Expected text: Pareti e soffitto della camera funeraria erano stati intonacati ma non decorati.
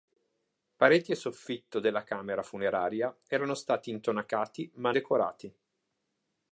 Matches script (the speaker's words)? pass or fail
fail